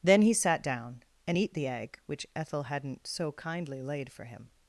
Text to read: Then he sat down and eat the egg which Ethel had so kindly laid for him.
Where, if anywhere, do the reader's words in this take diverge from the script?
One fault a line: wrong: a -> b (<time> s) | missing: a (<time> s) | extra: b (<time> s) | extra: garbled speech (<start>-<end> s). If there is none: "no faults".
wrong: had -> hadn't (2.6 s)